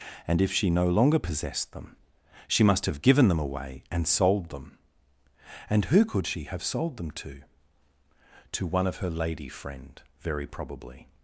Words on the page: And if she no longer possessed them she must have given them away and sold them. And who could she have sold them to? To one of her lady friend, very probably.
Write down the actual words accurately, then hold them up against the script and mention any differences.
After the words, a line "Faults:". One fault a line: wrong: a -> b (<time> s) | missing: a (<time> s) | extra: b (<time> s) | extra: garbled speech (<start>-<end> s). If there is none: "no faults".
And if she no longer possessed them she must have given them away and sold them. And who could she have sold them to? To one of her lady friend, very probably.
Faults:
no faults